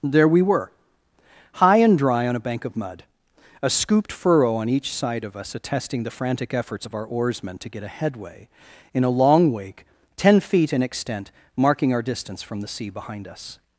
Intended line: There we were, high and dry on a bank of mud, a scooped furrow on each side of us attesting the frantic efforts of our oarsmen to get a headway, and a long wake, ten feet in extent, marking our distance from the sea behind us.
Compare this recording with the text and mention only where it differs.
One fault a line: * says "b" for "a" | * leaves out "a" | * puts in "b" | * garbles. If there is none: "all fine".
* says "in" for "and"